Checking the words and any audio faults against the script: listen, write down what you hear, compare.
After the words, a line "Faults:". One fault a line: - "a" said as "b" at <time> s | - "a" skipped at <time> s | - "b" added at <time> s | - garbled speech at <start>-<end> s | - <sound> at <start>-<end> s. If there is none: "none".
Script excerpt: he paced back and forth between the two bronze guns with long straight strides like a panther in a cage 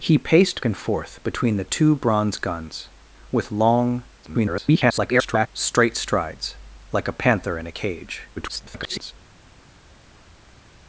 he paced and forth between the two bronze guns with long [garbled] straight strides like a panther in a cage [garbled]
Faults:
- "back" skipped at 0.7 s
- garbled speech at 4.2-5.5 s
- garbled speech at 8.4-9.1 s